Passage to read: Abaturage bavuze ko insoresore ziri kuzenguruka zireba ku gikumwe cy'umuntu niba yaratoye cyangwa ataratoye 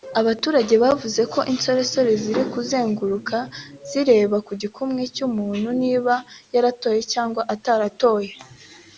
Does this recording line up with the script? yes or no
yes